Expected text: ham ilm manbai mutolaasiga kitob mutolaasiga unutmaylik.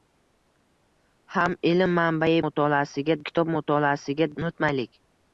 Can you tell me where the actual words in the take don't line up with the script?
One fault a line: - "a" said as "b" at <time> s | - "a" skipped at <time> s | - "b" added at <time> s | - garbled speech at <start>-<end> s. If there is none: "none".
none